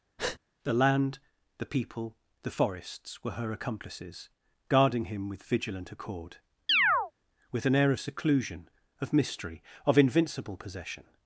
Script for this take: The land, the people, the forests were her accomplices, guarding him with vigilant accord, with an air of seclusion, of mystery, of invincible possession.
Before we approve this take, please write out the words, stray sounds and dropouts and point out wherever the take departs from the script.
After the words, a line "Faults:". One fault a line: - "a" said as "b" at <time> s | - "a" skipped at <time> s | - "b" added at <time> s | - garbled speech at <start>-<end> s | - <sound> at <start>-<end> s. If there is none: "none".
The land, the people, the forests were her accomplices, guarding him with vigilant accord, with an air of seclusion, of mystery, of invincible possession.
Faults:
- breath at 0.2-0.4 s
- chirp at 6.7-7.1 s